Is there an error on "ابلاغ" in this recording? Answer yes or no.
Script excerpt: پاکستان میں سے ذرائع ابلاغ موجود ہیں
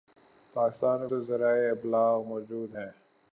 no